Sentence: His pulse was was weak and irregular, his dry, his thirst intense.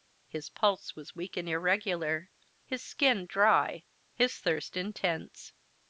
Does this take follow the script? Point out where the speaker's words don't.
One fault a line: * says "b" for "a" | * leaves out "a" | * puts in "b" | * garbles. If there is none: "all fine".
* leaves out "was"
* puts in "skin"